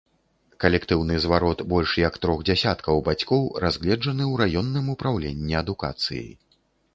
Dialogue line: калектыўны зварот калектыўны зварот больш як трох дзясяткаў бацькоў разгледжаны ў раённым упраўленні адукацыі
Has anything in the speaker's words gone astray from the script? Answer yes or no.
yes